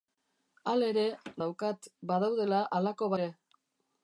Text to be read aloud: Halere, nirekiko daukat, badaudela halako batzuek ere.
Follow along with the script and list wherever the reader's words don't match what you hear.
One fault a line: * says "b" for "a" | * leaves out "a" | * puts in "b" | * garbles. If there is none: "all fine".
* leaves out "nirekiko"
* leaves out "batzuek"